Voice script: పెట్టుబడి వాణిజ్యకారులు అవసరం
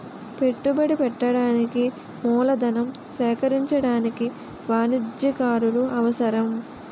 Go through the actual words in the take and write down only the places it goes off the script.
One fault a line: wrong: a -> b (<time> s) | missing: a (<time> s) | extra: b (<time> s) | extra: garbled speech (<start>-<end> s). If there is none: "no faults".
extra: పెట్టడానికి మూలధనం సేకరించడానికి (0.9 s)